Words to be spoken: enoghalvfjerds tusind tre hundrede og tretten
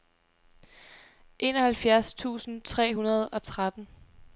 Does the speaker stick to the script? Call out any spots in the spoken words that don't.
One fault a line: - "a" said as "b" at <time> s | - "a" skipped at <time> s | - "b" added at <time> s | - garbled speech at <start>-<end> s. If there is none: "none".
none